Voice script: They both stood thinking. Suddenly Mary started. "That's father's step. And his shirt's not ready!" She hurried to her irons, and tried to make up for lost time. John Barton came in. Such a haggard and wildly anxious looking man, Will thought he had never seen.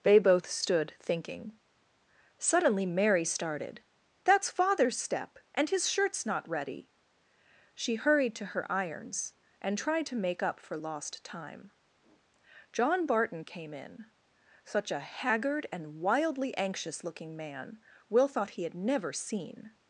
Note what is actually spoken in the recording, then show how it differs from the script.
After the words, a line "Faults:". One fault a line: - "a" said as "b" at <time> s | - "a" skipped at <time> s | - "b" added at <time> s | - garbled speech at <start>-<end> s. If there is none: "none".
They both stood thinking. Suddenly Mary started. "That's father's step. And his shirt's not ready!" She hurried to her irons, and tried to make up for lost time. John Barton came in. Such a haggard and wildly anxious looking man, Will thought he had never seen.
Faults:
none